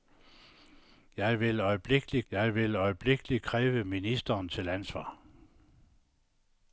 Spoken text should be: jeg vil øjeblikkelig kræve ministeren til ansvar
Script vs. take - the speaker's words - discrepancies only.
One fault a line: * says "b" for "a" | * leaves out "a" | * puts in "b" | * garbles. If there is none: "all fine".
* puts in "jeg vil øjeblikkelig"